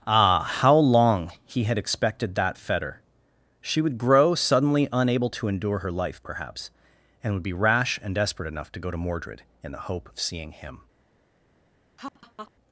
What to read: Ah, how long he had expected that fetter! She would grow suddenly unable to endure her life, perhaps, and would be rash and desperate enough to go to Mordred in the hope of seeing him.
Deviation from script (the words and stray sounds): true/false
true